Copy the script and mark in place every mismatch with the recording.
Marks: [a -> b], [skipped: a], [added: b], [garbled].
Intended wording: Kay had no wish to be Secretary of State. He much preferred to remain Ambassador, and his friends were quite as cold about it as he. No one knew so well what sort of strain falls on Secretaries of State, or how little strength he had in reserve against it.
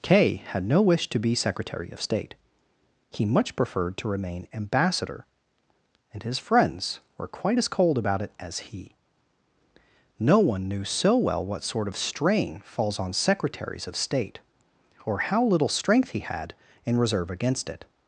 Kay had no wish to be Secretary of State. He much preferred to remain Ambassador, and his friends were quite as cold about it as he. No one knew so well what sort of strain falls on Secretaries of State, or how little strength he had in reserve against it.